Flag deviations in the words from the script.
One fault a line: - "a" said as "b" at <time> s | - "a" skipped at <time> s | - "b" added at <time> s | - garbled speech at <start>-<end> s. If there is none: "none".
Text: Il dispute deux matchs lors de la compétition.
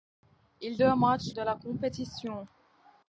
- "dispute" skipped at 0.8 s
- "lors" skipped at 1.3 s